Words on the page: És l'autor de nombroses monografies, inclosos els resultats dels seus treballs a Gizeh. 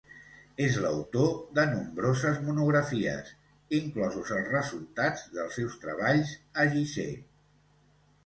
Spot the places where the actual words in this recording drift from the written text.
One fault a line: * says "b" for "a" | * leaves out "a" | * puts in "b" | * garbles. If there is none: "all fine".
all fine